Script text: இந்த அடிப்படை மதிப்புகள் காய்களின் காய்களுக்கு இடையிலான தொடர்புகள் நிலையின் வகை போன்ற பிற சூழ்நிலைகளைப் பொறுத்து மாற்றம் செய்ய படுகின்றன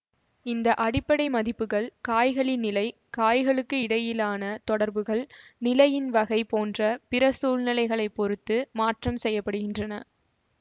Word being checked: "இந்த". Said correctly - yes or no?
yes